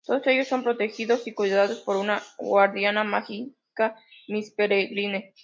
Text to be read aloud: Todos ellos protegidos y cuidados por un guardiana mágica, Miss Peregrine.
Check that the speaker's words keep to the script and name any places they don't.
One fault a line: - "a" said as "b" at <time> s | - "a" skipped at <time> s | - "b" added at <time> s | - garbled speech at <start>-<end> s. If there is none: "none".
- "son" added at 0.5 s
- "un" said as "una" at 1.9 s